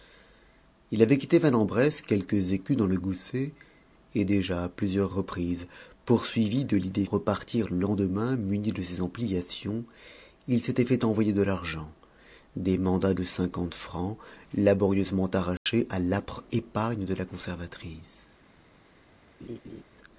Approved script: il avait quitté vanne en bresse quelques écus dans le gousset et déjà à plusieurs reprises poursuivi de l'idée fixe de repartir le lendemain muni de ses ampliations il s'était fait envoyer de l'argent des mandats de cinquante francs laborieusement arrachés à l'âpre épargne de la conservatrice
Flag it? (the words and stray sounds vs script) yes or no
yes